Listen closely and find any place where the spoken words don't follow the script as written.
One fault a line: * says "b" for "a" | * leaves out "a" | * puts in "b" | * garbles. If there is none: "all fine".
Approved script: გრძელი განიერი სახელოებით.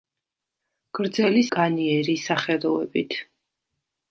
all fine